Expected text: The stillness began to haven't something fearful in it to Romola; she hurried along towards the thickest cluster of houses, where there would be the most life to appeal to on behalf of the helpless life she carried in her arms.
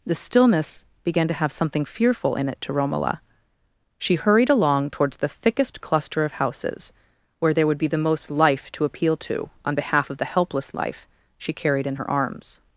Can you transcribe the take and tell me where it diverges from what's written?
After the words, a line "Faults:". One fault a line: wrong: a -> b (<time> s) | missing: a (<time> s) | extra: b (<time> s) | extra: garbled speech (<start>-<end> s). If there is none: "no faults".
The stillness began to have something fearful in it to Romola; she hurried along towards the thickest cluster of houses, where there would be the most life to appeal to on behalf of the helpless life she carried in her arms.
Faults:
wrong: haven't -> have (1.3 s)